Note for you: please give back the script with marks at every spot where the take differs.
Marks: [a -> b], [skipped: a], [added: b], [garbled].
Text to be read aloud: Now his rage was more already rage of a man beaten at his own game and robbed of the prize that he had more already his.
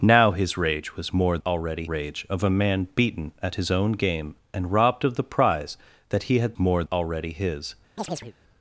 Now his rage was more already rage of a man beaten at his own game and robbed of the prize that he had more already his.